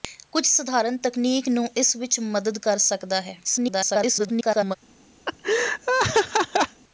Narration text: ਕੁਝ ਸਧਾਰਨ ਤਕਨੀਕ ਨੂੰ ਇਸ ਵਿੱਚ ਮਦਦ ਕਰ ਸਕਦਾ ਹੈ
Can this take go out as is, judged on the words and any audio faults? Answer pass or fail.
fail